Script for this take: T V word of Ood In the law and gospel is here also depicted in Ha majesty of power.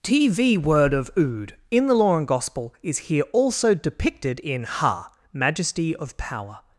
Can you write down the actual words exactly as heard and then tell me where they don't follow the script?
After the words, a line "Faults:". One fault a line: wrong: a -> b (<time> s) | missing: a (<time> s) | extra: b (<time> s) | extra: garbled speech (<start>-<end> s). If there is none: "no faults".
T V word of Ood In the law and gospel is here also depicted in Ha majesty of power.
Faults:
no faults